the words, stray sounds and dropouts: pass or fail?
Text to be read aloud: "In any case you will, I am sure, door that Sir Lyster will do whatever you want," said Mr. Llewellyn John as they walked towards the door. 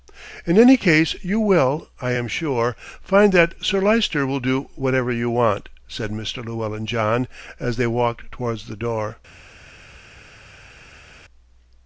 fail